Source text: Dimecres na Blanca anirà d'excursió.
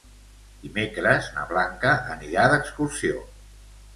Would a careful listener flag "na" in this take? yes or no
no